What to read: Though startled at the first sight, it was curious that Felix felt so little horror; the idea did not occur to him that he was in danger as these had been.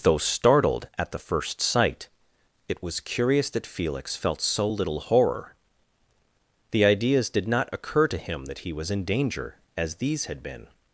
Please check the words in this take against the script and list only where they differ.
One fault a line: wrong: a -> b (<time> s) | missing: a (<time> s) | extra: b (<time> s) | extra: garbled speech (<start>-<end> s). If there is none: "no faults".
wrong: idea -> ideas (6.9 s)